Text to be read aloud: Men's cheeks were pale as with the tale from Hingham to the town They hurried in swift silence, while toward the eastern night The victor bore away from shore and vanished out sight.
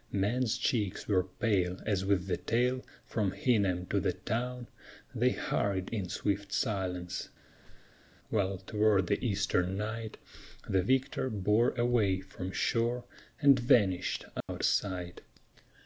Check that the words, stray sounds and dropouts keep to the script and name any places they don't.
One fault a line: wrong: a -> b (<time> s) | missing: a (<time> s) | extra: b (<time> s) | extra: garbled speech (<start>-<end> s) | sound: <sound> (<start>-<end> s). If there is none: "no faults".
sound: squeak (7.5-8.1 s)
sound: dropout (14.4-14.5 s)